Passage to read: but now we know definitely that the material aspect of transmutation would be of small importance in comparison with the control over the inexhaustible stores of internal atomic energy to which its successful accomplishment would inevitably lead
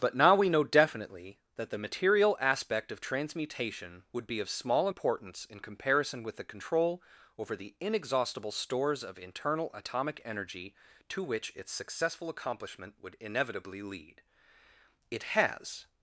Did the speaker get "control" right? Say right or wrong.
right